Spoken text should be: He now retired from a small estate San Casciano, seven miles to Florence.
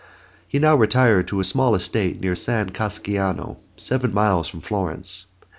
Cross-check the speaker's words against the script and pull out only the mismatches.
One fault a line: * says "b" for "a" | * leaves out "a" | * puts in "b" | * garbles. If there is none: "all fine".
* says "to" for "from"
* puts in "near"
* says "from" for "to"